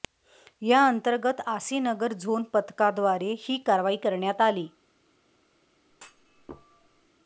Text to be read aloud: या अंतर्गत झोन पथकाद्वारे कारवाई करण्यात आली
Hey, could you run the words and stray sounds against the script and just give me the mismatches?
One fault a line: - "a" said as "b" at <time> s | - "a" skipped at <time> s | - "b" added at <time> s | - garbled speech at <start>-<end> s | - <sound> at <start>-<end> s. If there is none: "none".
- "आसीनगर" added at 1.5 s
- "ही" added at 3.4 s
- thud at 5.9-7.1 s